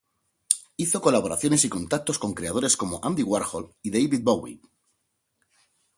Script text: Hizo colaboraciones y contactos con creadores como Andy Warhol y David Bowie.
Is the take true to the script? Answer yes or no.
yes